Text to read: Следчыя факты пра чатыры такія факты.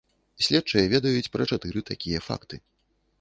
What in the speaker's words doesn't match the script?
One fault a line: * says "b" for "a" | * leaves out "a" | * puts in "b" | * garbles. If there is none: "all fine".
* says "ведаюць" for "факты"